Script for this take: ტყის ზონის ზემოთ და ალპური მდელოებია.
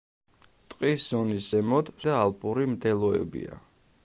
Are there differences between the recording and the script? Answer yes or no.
no